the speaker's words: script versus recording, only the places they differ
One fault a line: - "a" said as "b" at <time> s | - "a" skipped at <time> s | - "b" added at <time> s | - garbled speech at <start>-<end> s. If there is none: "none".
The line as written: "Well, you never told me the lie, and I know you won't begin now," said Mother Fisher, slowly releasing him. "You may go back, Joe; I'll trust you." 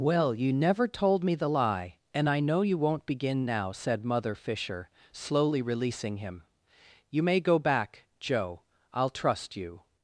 none